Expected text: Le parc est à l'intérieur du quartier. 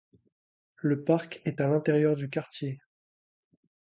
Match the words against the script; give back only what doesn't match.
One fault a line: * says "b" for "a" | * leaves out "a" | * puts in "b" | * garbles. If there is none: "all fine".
all fine